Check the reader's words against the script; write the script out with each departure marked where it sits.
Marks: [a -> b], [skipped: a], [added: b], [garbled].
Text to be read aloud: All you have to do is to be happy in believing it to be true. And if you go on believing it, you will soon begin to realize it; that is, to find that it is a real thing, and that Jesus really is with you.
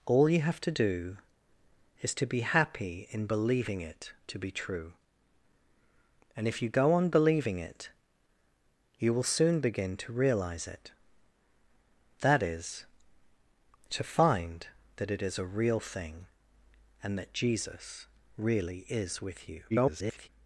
All you have to do is to be happy in believing it to be true. And if you go on believing it, you will soon begin to realize it; that is, to find that it is a real thing, and that Jesus really is with you. [garbled]